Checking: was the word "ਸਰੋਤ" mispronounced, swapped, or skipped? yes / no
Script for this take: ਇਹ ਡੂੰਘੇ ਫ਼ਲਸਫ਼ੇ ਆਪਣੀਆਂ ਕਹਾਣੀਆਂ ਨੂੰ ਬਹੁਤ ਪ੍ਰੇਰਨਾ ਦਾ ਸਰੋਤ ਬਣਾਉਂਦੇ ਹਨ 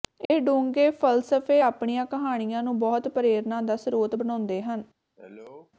no